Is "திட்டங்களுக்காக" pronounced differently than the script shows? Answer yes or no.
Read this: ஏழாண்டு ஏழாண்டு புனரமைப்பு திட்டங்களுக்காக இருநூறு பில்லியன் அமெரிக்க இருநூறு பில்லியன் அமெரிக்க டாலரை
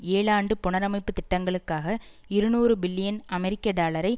no